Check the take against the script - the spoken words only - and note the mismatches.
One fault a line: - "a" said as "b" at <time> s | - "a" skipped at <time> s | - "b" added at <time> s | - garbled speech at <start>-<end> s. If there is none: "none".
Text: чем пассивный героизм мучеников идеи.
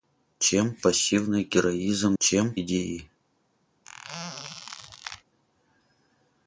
- "мучеников" said as "чем" at 2.2 s